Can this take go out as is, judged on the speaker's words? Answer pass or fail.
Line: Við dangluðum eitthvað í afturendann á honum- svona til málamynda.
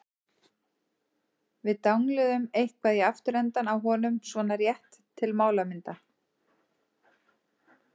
fail